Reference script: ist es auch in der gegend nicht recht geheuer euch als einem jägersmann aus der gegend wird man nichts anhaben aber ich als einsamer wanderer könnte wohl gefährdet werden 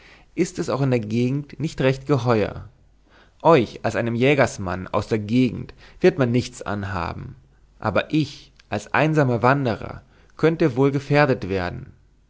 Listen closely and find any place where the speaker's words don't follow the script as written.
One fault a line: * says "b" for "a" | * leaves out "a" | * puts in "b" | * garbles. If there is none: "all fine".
all fine